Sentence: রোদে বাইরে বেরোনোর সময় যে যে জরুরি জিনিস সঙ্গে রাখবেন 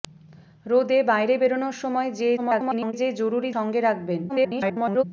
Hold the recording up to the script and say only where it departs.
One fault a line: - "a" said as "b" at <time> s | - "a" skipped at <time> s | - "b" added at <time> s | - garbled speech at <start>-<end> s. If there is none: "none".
- garbled speech at 2.4-2.9 s
- "জিনিস" skipped at 3.5 s
- garbled speech at 4.3-5.0 s